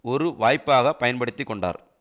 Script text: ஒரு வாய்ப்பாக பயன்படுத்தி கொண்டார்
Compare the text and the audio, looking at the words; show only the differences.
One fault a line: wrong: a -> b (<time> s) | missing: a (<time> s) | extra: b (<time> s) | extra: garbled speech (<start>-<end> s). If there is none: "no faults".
no faults